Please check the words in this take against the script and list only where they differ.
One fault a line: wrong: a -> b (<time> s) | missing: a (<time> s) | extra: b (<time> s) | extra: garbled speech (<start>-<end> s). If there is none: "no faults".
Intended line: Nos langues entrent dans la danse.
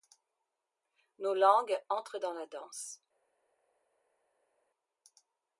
no faults